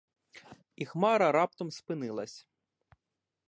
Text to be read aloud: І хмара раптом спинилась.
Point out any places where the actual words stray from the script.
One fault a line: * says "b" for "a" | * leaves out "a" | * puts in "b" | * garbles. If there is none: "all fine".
all fine